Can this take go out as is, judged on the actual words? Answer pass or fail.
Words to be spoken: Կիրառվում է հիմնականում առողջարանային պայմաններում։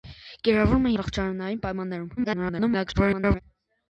fail